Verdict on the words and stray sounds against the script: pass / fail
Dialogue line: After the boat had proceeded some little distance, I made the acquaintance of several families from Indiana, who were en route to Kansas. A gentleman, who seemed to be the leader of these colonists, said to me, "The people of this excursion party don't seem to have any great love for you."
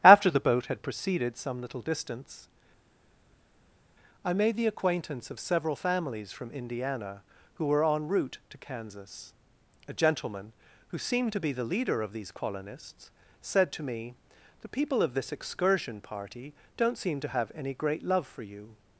pass